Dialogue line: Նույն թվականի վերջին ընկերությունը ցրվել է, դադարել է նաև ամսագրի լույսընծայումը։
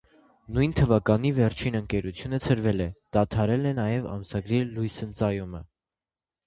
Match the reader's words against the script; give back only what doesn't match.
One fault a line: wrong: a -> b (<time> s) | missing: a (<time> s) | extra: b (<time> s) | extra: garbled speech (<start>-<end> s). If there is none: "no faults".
no faults